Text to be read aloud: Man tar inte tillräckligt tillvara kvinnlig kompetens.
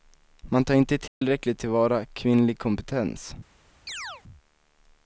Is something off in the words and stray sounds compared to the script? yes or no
yes